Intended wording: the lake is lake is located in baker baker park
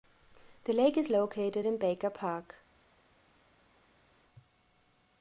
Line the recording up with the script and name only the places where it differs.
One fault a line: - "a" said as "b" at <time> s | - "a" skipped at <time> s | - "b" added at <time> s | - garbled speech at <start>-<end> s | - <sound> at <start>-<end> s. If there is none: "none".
- "lake is" skipped at 1.1 s
- "baker" skipped at 2.1 s